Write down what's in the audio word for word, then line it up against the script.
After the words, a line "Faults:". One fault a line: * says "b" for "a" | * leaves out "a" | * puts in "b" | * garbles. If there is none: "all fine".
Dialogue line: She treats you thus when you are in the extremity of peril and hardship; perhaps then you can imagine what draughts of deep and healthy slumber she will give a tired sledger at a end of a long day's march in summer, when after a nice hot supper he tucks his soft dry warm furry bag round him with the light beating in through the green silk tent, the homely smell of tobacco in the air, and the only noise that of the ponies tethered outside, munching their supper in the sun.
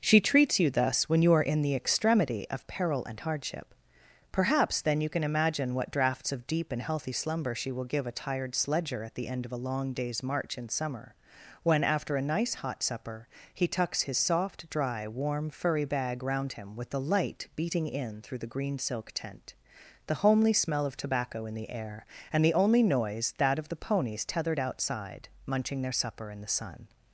She treats you thus when you are in the extremity of peril and hardship; perhaps then you can imagine what draughts of deep and healthy slumber she will give a tired sledger at the end of a long day's march in summer, when after a nice hot supper he tucks his soft dry warm furry bag round him with the light beating in through the green silk tent, the homely smell of tobacco in the air, and the only noise that of the ponies tethered outside, munching their supper in the sun.
Faults:
* says "the" for "a"